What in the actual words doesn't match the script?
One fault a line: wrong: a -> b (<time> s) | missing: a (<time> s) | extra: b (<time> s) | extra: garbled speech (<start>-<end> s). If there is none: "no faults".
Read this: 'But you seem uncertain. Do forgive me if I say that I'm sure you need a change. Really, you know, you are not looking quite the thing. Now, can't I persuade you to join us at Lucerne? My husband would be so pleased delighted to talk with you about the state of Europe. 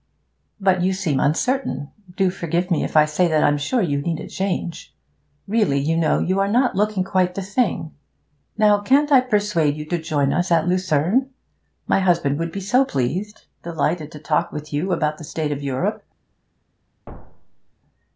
no faults